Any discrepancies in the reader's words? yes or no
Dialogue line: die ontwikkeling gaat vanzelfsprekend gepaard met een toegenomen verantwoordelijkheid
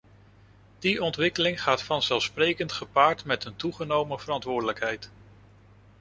no